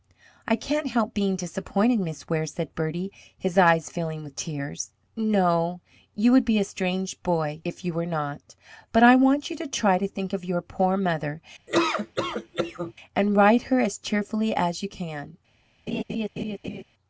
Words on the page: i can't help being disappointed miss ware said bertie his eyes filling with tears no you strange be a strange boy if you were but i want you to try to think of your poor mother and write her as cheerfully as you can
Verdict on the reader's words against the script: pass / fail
fail